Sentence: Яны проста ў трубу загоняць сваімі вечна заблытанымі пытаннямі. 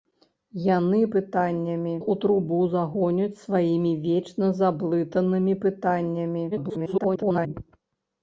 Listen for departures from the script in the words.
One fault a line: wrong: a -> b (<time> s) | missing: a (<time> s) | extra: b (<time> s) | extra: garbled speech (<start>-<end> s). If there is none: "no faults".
wrong: проста -> пытаннямі (1.2 s)
extra: garbled speech (6.5-7.5 s)